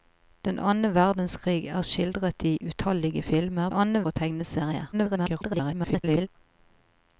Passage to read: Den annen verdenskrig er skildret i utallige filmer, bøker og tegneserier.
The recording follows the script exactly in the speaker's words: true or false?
false